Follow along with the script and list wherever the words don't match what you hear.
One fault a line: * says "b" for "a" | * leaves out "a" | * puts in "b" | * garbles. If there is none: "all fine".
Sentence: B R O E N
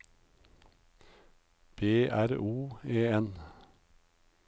all fine